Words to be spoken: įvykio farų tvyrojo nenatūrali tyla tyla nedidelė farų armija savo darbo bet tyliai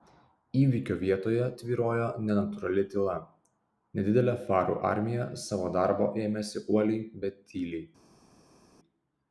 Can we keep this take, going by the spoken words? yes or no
no